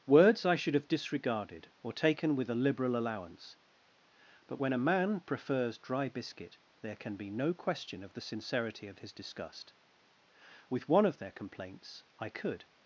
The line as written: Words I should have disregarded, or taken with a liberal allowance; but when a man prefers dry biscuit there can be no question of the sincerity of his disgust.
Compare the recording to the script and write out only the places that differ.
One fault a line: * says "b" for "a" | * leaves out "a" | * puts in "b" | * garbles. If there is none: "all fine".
* puts in "With one of their complaints I could"